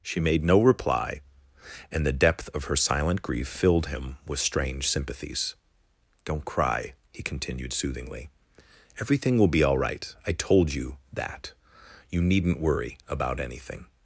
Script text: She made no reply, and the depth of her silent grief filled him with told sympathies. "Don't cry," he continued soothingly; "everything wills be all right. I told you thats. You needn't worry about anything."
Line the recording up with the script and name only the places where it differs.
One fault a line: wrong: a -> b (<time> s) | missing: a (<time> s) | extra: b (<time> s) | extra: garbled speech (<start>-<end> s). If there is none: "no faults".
wrong: told -> strange (4.4 s)
wrong: wills -> will (9.4 s)
wrong: thats -> that (11.1 s)